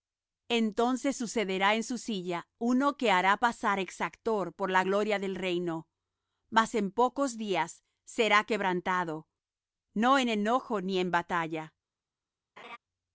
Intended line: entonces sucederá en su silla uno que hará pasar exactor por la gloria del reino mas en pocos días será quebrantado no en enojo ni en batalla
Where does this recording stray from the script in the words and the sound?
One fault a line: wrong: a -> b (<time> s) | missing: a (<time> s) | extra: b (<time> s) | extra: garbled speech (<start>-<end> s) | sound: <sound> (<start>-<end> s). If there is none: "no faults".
sound: laugh (12.6-12.8 s)